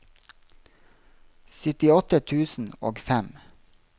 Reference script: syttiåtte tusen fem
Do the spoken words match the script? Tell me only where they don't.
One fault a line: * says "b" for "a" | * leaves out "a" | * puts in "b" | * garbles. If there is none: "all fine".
* puts in "og"